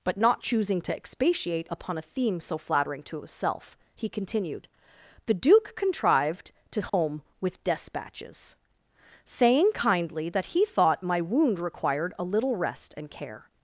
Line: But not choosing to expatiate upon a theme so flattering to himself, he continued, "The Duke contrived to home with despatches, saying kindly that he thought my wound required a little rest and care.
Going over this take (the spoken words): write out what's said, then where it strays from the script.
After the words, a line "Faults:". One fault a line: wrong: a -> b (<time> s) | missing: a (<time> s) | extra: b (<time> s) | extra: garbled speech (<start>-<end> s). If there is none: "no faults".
But not choosing to expatiate upon a theme so flattering to himself, he continued, "The Duke contrived to home with despatches, saying kindly that he thought my wound required a little rest and care.
Faults:
no faults